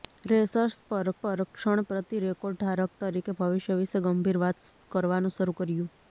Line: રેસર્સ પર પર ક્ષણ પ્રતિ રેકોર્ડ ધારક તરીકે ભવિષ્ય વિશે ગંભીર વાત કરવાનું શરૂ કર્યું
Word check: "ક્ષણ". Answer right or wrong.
right